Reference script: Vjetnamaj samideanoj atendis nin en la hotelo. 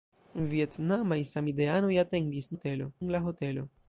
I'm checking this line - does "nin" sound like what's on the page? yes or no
no